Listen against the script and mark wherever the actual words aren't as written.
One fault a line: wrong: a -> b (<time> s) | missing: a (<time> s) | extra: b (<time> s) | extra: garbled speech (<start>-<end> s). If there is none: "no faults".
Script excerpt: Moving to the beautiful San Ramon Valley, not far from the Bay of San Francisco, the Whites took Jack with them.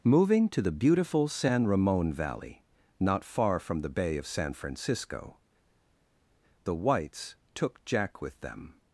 no faults